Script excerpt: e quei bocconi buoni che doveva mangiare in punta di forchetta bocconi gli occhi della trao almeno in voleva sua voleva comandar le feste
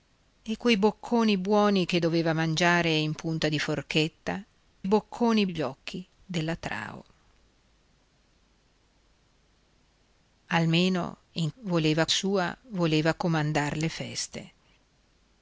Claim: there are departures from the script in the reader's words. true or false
false